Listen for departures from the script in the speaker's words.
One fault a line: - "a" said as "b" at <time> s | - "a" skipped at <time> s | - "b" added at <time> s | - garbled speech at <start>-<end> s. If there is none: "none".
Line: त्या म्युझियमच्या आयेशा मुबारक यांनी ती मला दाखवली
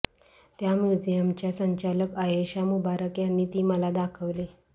- "संचालक" added at 1.5 s